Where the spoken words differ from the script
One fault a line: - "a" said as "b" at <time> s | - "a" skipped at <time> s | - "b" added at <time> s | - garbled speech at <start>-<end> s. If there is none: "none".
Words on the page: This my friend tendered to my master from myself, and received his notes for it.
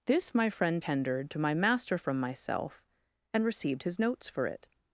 none